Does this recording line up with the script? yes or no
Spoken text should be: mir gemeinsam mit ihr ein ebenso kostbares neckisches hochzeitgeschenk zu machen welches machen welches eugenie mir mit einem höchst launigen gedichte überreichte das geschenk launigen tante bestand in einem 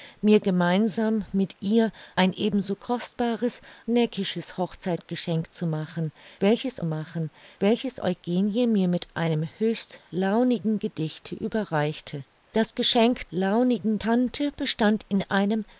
yes